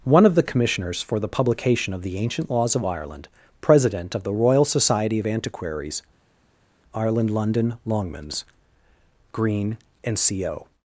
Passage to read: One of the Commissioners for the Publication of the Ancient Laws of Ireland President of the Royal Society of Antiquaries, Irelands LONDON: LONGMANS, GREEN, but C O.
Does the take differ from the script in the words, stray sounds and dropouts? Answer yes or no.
yes